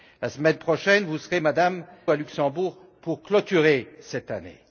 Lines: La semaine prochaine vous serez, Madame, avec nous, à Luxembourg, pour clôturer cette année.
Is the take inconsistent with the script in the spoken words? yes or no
yes